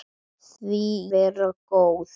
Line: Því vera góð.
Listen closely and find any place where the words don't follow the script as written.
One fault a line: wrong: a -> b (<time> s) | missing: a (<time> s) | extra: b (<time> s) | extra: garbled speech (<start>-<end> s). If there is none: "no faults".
no faults